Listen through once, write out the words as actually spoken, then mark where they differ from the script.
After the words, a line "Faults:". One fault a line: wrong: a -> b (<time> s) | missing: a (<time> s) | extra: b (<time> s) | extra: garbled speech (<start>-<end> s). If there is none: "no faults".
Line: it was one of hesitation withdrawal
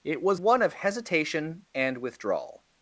it was one of hesitation and withdrawal
Faults:
extra: and (1.7 s)